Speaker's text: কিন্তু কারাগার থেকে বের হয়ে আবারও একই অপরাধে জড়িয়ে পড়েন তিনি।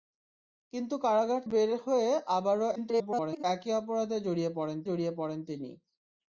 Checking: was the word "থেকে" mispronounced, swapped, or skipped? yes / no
yes